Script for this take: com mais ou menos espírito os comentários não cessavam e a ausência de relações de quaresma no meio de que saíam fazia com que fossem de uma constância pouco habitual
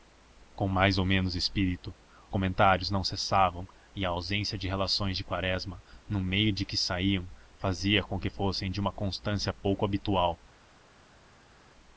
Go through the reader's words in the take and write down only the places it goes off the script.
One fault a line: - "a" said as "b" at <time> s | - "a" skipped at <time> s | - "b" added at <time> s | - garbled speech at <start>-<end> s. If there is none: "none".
- "os" skipped at 1.9 s